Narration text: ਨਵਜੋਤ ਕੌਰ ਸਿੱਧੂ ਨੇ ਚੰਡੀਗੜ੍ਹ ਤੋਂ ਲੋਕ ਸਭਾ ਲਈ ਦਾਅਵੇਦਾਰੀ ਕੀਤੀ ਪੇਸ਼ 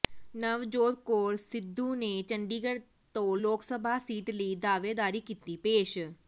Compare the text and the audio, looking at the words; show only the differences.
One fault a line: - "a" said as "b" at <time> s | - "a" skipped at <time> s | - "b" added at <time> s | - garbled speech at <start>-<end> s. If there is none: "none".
- "ਸੀਟ" added at 4.0 s